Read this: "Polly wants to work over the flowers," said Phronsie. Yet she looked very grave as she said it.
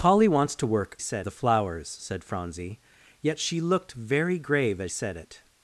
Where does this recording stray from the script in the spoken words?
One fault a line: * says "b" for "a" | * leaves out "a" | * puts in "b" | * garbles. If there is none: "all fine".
* says "said" for "over"
* leaves out "she"